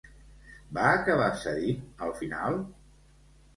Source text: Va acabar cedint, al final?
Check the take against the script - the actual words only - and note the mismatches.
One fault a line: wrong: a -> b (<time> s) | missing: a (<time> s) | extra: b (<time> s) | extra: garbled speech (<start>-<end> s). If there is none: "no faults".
no faults